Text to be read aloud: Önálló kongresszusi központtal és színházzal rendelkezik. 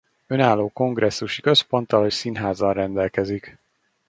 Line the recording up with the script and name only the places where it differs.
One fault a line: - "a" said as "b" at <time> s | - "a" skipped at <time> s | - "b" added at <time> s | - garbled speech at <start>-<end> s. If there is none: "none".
none